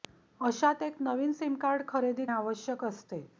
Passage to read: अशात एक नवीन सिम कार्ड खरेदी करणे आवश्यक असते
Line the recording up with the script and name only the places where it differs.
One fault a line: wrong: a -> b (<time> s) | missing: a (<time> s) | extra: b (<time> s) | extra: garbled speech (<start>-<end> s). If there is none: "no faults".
missing: करणे (2.2 s)